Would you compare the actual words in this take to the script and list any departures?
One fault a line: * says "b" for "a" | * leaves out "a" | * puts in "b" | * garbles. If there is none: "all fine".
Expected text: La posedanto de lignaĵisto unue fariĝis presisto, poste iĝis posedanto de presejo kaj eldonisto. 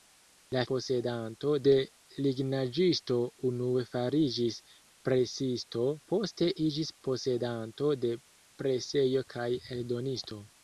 all fine